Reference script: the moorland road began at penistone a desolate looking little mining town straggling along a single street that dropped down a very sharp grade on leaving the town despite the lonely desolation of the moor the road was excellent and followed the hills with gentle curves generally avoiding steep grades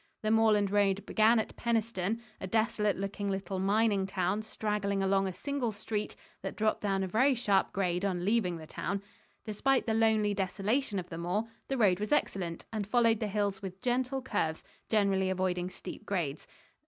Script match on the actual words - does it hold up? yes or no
yes